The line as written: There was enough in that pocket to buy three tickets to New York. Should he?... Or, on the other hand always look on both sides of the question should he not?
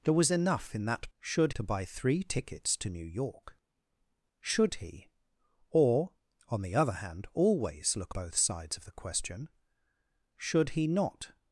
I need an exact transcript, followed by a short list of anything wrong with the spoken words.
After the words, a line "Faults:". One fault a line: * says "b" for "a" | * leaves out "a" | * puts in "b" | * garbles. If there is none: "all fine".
There was enough in that should to buy three tickets to New York. Should he?... Or, on the other hand always look both sides of the question should he not?
Faults:
* says "should" for "pocket"
* leaves out "on"